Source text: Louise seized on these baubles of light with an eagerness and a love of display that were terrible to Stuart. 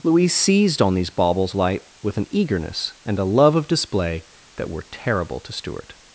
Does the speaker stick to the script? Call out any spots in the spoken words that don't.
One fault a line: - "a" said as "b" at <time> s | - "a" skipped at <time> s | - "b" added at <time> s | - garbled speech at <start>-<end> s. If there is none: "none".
- "of" skipped at 1.5 s